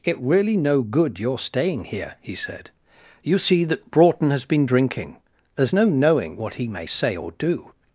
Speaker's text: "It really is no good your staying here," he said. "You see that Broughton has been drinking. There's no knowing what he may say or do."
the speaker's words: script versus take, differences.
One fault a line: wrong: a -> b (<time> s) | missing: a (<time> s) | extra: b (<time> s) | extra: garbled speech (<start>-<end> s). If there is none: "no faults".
missing: is (0.6 s)